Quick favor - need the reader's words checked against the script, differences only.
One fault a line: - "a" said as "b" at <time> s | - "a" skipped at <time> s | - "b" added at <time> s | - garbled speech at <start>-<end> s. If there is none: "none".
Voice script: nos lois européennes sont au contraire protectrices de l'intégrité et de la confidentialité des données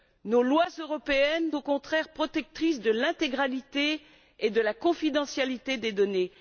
- "sont" skipped at 1.5 s